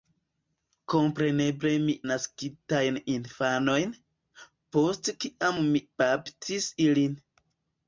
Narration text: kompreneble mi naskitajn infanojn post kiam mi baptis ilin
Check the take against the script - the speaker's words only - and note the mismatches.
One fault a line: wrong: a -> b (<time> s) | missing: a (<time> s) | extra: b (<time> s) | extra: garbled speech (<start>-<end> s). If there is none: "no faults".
no faults